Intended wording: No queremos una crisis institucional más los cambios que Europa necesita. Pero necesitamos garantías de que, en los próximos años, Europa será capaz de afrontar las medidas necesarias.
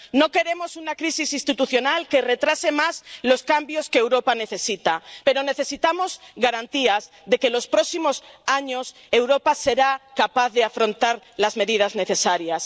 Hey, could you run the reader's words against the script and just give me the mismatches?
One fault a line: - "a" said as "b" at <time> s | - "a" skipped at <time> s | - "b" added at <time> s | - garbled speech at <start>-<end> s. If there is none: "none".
- "que retrase" added at 2.1 s